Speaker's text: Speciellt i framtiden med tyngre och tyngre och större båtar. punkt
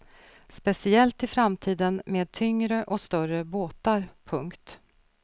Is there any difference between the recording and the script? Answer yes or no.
yes